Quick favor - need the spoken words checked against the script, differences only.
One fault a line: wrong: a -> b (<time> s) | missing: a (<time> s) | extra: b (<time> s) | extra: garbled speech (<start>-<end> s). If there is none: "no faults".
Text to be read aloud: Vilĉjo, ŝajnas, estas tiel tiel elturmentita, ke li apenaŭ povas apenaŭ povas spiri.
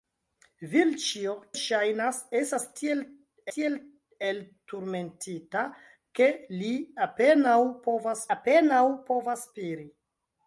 no faults